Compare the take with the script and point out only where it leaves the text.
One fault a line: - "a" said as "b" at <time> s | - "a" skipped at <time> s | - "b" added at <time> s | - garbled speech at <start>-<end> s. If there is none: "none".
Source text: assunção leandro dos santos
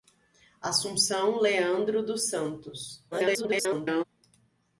- garbled speech at 3.1-4.0 s